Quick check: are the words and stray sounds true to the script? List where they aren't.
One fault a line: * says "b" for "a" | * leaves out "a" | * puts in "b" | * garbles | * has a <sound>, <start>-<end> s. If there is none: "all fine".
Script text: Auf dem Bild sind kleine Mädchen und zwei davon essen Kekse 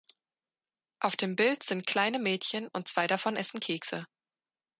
all fine